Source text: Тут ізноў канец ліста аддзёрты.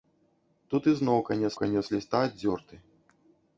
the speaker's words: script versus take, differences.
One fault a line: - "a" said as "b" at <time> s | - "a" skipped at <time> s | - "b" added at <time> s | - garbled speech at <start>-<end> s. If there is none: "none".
- "канец" added at 1.6 s